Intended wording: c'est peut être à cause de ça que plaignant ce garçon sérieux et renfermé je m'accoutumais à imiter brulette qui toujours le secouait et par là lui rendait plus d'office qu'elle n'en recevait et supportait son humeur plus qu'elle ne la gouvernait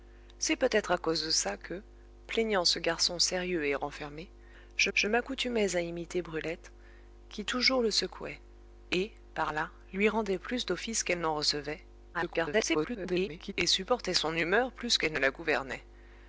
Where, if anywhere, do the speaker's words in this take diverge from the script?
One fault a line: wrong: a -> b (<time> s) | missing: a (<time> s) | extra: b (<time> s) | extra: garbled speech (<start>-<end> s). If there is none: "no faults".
extra: je (4.9 s)
extra: garbled speech (12.1-13.5 s)